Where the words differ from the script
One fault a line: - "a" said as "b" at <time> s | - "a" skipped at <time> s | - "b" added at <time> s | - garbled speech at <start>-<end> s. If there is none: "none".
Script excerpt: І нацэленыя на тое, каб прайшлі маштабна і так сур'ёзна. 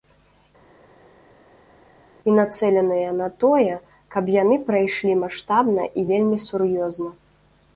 - "яны" added at 4.4 s
- "так" said as "вельмі" at 6.1 s